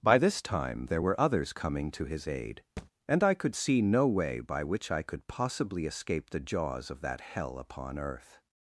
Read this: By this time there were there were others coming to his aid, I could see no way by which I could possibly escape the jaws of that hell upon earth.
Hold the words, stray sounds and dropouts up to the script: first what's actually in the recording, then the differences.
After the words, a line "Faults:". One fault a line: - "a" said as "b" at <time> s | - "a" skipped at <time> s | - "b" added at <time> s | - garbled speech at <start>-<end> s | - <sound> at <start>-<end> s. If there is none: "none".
By this time there were others coming to his aid, and I could see no way by which I could possibly escape the jaws of that hell upon earth.
Faults:
- "there were" skipped at 1.2 s
- thud at 2.8-2.9 s
- "and" added at 3.1 s